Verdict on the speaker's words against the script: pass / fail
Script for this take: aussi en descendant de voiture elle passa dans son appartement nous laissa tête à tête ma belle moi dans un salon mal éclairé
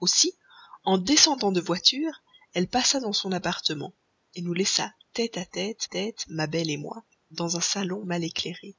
fail